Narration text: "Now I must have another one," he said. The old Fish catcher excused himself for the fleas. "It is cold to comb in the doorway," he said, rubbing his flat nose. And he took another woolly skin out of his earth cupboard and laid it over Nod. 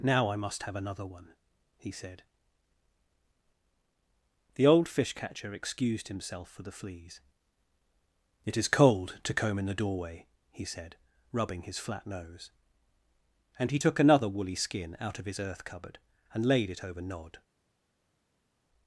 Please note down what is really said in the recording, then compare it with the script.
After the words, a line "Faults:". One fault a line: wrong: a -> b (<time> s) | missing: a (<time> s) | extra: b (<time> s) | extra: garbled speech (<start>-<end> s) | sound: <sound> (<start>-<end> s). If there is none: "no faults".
"Now I must have another one," he said. The old Fish catcher excused himself for the fleas. "It is cold to comb in the doorway," he said, rubbing his flat nose. And he took another woolly skin out of his earth cupboard and laid it over Nod.
Faults:
no faults